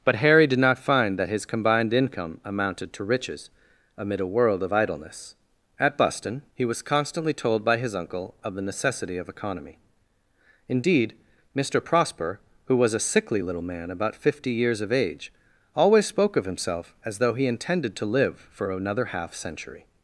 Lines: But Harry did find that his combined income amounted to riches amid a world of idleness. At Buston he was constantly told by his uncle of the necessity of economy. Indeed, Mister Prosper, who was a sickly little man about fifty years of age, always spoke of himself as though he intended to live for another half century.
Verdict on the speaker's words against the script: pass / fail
fail